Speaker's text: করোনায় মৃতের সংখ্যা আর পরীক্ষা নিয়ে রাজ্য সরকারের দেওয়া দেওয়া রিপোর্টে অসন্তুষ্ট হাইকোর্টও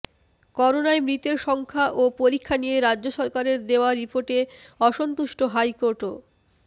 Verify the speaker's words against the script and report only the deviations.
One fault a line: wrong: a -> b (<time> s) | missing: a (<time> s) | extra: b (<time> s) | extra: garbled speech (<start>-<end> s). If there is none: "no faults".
wrong: আর -> ও (1.9 s)
missing: দেওয়া (3.9 s)